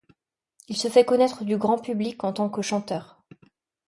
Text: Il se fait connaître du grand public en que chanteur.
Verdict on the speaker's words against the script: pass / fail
fail